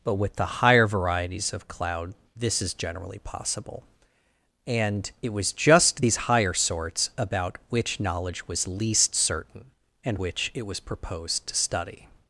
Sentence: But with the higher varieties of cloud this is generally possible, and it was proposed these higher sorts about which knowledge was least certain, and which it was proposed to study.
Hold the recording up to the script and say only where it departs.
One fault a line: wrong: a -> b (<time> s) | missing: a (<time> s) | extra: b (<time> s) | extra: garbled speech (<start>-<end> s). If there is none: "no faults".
wrong: proposed -> just (5.5 s)